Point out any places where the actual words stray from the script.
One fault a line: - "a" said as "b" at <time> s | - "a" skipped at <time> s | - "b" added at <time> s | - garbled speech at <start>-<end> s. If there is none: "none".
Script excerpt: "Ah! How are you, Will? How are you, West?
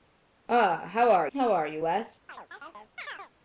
- "you Will" skipped at 1.3 s